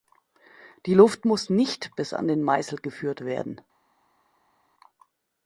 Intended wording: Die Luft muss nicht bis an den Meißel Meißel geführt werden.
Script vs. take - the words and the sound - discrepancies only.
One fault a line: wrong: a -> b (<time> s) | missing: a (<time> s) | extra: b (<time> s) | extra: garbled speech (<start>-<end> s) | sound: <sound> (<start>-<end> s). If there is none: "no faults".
missing: Meißel (2.8 s)